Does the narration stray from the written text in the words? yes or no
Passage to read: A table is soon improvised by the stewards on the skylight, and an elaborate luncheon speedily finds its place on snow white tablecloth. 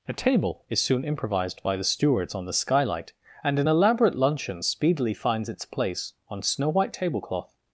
no